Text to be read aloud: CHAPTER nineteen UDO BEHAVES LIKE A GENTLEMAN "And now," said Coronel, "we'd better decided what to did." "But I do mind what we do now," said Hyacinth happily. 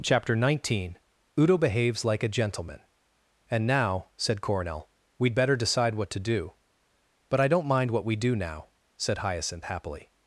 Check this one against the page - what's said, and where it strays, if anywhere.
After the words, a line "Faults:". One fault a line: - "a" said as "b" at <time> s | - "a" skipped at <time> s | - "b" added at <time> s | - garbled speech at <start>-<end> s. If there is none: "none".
CHAPTER nineteen UDO BEHAVES LIKE A GENTLEMAN "And now," said Coronel, "we'd better decide what to do." "But I don't mind what we do now," said Hyacinth happily.
Faults:
- "decided" said as "decide" at 5.5 s
- "did" said as "do" at 6.2 s
- "do" said as "don't" at 7.5 s